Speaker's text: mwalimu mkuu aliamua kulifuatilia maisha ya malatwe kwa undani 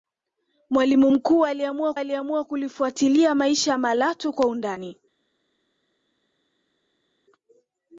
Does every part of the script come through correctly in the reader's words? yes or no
no